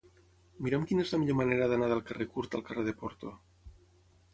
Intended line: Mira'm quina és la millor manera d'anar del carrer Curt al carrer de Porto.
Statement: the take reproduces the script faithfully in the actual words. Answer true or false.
true